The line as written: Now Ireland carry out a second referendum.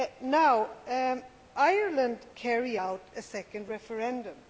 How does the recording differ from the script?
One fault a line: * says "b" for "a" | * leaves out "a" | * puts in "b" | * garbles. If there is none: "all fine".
all fine